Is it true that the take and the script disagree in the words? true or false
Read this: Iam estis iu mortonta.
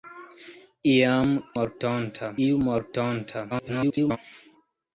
true